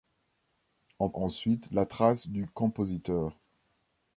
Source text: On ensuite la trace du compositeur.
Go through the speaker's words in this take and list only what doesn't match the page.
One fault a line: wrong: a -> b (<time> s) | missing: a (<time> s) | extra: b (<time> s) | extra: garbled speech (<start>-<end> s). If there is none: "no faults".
no faults